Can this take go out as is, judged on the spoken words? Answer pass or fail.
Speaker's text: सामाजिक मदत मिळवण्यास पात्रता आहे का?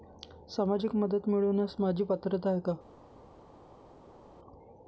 fail